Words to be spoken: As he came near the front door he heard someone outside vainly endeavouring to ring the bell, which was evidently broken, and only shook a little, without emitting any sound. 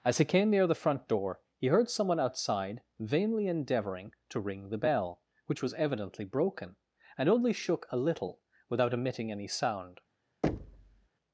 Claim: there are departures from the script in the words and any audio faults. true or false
true